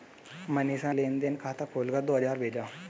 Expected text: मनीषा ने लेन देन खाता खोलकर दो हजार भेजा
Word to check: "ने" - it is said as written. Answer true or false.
false